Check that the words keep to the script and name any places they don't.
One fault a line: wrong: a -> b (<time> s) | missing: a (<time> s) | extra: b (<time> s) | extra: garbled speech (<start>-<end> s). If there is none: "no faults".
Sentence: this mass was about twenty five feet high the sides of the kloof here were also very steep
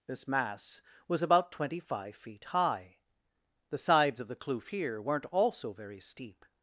wrong: were -> weren't (5.0 s)